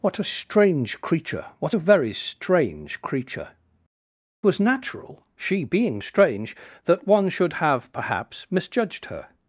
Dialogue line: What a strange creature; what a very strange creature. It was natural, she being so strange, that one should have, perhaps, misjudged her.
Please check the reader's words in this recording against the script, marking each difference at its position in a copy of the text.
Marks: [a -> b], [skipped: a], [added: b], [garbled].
What a strange creature; what a very strange creature. [skipped: It] was natural, she being [skipped: so] strange, that one should have, perhaps, misjudged her.